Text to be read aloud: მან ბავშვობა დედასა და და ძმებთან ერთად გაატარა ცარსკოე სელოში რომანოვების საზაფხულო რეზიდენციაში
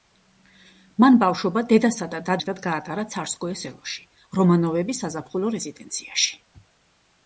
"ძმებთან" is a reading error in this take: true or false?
true